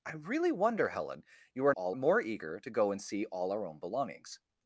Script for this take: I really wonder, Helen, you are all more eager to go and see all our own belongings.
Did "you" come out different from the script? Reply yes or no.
no